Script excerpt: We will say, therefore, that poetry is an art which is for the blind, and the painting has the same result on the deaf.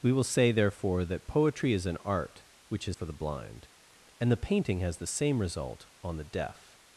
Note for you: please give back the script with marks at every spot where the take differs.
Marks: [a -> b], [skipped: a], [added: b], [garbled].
We will say, therefore, that poetry is an art which is for the blind, and the painting has the same result on the deaf.